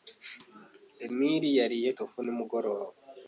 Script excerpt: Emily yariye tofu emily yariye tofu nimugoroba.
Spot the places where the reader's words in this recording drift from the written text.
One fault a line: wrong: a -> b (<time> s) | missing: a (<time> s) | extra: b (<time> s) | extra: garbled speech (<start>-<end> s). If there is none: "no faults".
missing: emily yariye tofu (2.2 s)